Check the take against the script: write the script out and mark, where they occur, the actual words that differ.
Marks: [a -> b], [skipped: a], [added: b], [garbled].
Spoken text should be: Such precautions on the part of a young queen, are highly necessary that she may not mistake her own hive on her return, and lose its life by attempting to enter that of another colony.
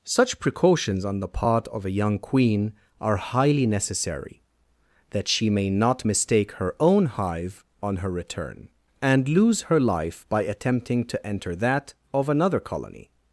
Such precautions on the part of a young queen, are highly necessary that she may not mistake her own hive on her return, and lose [its -> her] life by attempting to enter that of another colony.